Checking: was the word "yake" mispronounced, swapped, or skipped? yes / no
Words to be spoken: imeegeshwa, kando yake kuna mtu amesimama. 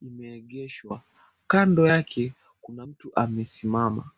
no